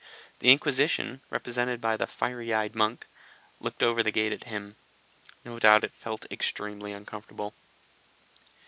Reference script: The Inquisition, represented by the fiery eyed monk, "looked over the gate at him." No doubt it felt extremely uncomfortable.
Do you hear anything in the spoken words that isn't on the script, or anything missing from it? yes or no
no